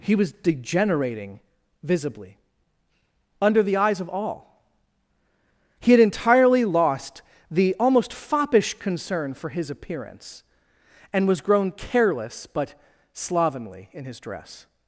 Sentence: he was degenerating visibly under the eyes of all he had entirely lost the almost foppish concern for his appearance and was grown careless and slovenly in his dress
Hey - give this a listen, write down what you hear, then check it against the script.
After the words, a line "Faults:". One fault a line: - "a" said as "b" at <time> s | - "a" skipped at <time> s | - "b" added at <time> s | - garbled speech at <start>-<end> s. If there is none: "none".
he was degenerating visibly under the eyes of all he had entirely lost the almost foppish concern for his appearance and was grown careless but slovenly in his dress
Faults:
- "and" said as "but" at 12.5 s